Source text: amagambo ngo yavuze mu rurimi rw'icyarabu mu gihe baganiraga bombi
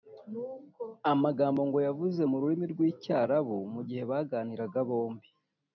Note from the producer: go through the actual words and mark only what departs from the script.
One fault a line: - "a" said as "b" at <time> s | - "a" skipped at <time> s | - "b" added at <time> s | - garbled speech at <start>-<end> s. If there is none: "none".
none